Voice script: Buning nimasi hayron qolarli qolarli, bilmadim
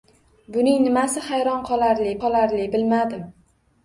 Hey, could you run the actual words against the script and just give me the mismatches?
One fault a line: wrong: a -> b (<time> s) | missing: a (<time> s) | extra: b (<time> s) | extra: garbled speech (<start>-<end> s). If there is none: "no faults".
no faults